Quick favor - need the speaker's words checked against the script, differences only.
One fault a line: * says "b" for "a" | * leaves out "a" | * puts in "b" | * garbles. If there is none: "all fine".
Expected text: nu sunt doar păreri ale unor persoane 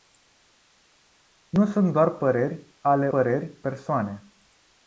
* says "păreri" for "unor"